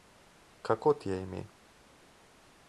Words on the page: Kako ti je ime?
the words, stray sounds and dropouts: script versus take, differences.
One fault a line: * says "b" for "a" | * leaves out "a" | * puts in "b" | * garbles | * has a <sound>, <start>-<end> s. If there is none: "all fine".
all fine